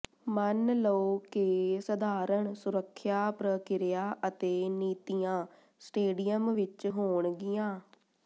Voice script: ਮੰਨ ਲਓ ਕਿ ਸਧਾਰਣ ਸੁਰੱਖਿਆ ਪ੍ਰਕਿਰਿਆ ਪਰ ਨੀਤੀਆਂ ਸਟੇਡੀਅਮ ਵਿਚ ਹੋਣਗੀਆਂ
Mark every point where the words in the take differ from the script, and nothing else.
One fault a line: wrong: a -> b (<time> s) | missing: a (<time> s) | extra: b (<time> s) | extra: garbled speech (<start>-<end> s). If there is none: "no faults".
wrong: ਪਰ -> ਅਤੇ (4.3 s)